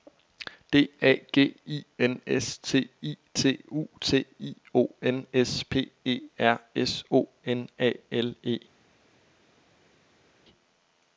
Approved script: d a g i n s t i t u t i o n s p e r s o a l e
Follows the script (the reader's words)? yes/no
no